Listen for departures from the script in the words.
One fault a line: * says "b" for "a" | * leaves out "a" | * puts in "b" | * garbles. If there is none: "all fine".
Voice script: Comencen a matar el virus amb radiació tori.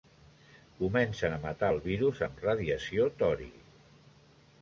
all fine